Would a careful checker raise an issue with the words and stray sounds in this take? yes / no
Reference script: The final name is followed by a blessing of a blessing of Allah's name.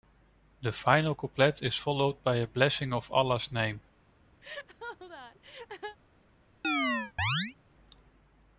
yes